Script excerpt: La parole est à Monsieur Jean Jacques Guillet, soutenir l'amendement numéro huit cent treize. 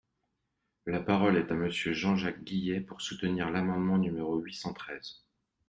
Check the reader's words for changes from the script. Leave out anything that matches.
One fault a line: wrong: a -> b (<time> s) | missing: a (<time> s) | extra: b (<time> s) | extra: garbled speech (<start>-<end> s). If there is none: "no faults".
extra: pour (2.8 s)